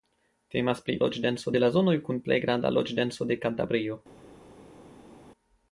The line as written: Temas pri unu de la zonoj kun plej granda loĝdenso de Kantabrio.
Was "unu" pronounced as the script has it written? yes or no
no